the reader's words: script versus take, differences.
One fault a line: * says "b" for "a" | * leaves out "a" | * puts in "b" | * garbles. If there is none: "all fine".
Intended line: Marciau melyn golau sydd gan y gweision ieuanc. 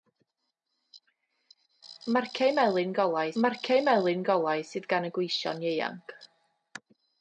* puts in "marciau melyn golau"